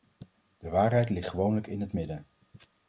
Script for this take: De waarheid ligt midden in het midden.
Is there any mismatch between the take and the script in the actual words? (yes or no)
yes